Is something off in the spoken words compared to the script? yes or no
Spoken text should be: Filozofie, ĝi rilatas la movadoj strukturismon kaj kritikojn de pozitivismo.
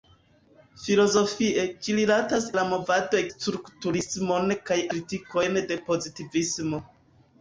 no